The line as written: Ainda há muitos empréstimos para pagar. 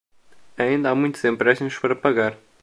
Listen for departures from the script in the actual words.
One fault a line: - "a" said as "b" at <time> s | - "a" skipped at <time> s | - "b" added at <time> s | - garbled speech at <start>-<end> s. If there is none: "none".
none